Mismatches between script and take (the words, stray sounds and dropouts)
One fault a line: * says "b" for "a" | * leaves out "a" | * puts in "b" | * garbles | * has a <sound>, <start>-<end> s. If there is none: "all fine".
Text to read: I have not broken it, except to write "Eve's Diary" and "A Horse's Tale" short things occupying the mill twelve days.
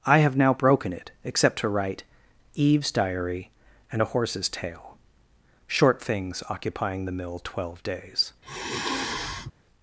* says "now" for "not"
* has a sigh, 8.4-9.5 s